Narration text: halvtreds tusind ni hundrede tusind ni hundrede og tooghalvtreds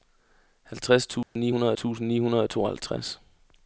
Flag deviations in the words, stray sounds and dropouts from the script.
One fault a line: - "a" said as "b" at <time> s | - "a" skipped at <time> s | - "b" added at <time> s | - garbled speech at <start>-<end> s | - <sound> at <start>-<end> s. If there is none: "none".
- dropout at 1.2-1.4 s